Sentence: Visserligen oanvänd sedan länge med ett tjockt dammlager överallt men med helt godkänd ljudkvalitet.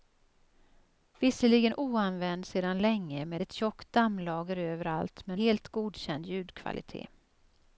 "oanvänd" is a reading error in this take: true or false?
false